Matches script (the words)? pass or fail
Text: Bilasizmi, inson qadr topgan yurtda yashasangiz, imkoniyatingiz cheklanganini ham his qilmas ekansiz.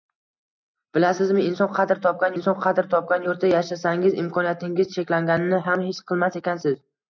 fail